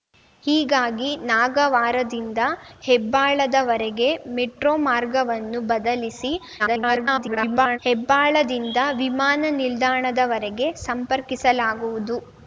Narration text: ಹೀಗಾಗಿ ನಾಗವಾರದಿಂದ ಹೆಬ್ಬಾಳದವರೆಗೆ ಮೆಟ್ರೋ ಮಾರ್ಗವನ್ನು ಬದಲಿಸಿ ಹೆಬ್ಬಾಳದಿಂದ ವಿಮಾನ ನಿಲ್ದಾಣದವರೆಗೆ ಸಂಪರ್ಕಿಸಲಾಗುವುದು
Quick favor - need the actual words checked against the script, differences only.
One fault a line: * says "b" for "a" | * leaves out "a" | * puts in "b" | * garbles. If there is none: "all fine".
* garbles